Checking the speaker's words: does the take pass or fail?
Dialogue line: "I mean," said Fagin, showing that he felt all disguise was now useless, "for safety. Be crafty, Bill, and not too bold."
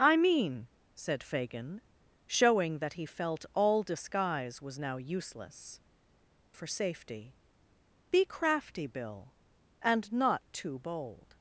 pass